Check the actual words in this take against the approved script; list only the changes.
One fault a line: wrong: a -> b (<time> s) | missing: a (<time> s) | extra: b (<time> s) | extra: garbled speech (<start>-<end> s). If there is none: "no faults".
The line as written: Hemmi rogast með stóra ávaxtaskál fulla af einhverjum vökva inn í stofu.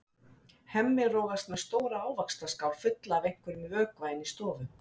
no faults